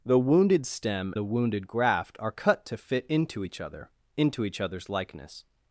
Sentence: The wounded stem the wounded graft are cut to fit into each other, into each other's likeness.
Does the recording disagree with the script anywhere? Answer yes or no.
no